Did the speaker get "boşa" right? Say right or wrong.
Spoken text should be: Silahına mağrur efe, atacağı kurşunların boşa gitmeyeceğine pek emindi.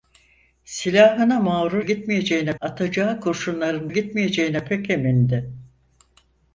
wrong